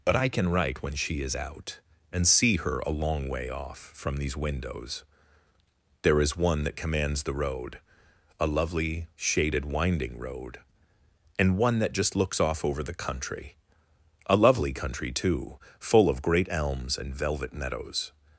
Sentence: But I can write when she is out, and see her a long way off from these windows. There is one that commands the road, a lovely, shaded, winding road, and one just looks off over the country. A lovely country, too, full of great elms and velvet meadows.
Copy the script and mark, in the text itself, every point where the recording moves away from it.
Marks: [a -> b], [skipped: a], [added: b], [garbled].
But I can write when she is out, and see her a long way off from these windows. There is one that commands the road, a lovely, shaded, winding road, and one [added: that] just looks off over the country. A lovely country, too, full of great elms and velvet meadows.